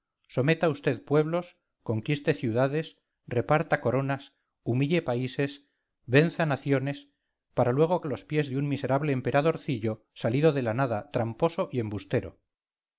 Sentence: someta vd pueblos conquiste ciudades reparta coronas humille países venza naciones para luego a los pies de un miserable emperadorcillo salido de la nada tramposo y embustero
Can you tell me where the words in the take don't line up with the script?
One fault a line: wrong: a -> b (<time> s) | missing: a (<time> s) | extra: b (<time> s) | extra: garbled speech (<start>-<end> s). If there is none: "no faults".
no faults